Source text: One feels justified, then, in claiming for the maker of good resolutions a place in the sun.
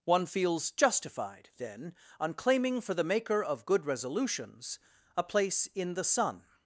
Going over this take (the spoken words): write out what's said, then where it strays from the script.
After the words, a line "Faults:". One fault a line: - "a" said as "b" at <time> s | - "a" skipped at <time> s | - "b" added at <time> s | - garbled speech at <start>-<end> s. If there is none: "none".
One feels justified, then, on claiming for the maker of good resolutions a place in the sun.
Faults:
- "in" said as "on" at 2.2 s